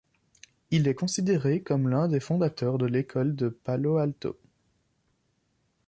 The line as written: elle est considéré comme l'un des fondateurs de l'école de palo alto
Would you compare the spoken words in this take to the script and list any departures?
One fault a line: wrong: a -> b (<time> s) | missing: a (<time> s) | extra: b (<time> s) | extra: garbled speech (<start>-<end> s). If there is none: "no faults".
wrong: elle -> il (0.7 s)